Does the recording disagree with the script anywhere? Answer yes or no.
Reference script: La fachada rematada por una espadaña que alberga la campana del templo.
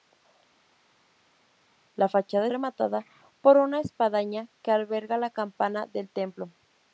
no